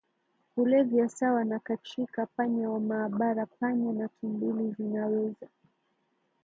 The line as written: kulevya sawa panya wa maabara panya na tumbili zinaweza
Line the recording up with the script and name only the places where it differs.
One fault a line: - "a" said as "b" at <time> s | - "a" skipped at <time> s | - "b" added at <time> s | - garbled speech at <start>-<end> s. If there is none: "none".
- "na katrika" added at 1.4 s